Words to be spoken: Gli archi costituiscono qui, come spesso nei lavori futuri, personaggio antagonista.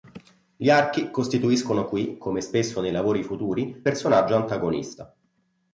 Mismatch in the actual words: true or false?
false